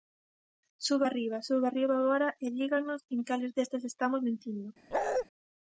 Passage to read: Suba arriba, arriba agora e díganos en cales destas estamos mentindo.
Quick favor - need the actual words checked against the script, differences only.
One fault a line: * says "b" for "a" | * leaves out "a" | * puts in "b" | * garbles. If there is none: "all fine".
* puts in "suba"